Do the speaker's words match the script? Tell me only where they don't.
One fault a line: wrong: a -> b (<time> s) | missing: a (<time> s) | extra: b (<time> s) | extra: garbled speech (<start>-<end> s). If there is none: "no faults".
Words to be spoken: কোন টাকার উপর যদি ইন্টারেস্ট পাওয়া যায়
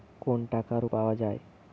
missing: উপর যদি ইন্টারেস্ট (0.8 s)